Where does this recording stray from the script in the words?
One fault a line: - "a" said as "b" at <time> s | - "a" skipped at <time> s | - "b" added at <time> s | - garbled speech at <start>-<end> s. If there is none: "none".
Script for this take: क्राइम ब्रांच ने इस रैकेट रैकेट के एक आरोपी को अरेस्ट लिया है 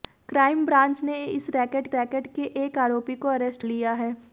none